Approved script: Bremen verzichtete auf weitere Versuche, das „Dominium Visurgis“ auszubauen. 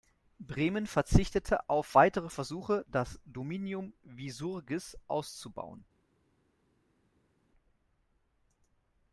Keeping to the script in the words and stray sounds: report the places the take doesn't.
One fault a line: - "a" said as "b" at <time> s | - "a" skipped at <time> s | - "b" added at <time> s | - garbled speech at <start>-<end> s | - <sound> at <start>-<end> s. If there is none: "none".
none